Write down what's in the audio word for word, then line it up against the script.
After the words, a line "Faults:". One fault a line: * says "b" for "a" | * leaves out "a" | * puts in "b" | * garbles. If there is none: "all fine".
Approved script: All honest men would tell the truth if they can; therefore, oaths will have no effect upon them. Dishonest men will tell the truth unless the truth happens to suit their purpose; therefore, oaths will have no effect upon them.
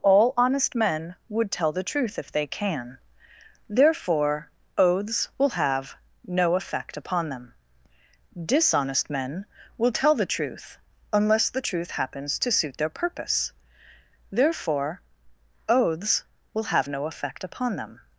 All honest men would tell the truth if they can; therefore, oaths will have no effect upon them. Dishonest men will tell the truth unless the truth happens to suit their purpose; therefore, oaths will have no effect upon them.
Faults:
all fine